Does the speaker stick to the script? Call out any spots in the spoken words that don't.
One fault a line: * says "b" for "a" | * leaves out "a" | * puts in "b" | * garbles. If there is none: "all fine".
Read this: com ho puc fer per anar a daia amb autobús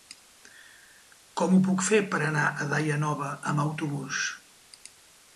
* puts in "nova"